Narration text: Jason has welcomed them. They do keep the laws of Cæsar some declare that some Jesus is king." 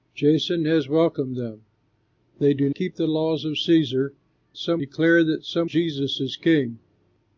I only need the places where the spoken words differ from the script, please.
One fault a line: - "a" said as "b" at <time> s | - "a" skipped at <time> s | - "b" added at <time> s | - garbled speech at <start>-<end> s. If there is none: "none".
none